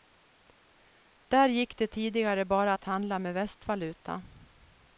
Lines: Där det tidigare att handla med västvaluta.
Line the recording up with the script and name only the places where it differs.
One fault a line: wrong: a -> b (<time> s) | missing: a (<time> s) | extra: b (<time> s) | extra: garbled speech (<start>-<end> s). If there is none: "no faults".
extra: gick (1.5 s)
extra: bara (2.5 s)